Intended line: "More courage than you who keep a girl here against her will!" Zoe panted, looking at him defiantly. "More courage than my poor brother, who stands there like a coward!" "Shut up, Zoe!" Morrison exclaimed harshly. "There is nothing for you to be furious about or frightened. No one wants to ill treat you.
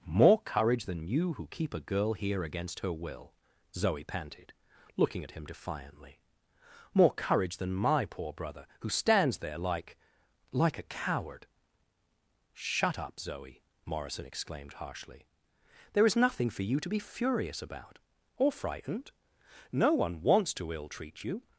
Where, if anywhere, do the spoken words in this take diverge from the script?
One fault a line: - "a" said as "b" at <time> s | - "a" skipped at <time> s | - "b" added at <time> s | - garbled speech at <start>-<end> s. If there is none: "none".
- "like" added at 10.5 s